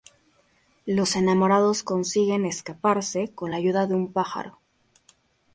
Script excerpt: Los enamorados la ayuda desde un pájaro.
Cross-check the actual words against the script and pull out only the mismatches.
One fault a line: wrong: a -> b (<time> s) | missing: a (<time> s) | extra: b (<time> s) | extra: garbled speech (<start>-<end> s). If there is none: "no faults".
extra: consiguen escaparse con (1.8 s)
wrong: desde -> de (3.8 s)